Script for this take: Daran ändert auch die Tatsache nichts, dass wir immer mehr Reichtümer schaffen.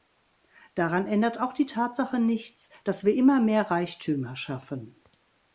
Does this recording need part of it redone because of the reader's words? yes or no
no